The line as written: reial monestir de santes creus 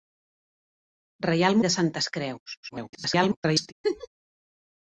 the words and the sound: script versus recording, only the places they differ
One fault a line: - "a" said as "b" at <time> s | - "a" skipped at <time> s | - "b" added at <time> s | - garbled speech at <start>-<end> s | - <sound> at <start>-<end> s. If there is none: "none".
- "monestir" skipped at 1.6 s
- garbled speech at 2.6-3.7 s
- laugh at 3.8-4.1 s